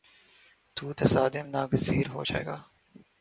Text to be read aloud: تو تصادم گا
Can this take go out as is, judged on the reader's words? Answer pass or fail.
fail